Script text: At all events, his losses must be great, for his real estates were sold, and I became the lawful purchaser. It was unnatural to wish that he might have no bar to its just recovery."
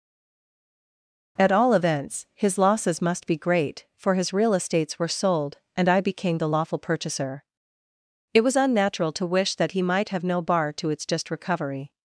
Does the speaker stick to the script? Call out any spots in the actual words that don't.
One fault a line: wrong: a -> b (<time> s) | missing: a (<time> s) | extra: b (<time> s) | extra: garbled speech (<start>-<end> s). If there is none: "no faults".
no faults